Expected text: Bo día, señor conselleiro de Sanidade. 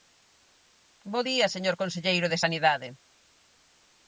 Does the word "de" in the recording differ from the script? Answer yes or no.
no